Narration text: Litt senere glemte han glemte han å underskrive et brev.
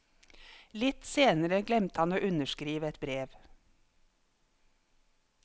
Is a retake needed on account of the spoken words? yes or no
yes